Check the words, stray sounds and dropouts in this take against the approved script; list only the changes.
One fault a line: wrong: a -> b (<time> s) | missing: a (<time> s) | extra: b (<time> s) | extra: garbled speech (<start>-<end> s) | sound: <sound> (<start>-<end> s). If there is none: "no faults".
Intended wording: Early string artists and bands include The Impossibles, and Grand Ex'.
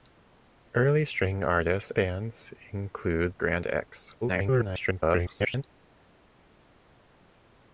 missing: and (1.9 s)
missing: The Impossibles and (3.3 s)
extra: garbled speech (4.2-5.6 s)